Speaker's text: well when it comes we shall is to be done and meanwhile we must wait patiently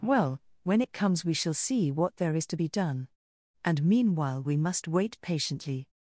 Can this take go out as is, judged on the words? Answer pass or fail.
fail